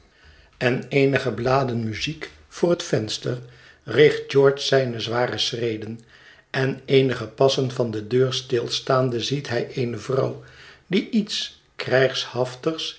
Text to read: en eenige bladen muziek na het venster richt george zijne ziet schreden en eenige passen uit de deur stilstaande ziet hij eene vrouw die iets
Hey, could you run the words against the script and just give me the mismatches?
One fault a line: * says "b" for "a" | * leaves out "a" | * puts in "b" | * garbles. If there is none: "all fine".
* says "voor" for "na"
* says "zware" for "ziet"
* says "van" for "uit"